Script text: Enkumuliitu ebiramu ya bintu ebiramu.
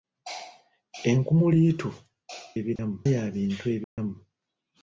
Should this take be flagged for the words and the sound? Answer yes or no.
yes